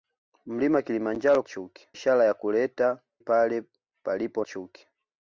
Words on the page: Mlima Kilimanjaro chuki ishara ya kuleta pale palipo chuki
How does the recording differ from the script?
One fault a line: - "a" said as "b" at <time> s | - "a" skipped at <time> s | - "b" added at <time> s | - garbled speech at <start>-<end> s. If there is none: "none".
none